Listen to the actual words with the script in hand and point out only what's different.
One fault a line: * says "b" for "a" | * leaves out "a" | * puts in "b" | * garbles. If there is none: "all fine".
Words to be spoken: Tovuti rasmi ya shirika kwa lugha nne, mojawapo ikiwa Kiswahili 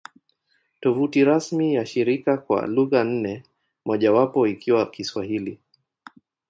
all fine